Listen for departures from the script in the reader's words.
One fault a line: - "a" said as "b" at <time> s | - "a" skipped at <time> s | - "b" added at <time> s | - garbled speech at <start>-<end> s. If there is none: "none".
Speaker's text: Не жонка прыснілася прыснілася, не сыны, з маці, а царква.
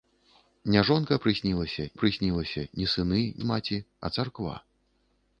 none